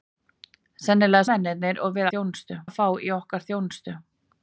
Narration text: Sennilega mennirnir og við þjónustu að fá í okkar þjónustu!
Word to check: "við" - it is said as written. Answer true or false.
true